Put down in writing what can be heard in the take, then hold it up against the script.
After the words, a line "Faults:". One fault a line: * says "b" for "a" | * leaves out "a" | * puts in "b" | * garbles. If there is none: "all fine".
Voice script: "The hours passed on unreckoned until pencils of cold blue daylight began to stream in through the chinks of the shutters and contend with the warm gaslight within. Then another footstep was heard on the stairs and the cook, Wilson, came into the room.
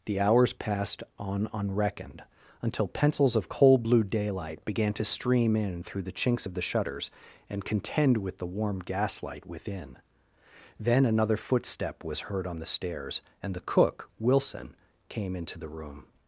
"The hours passed on unreckoned until pencils of cold blue daylight began to stream in through the chinks of the shutters and contend with the warm gaslight within. Then another footstep was heard on the stairs and the cook, Wilson, came into the room.
Faults:
all fine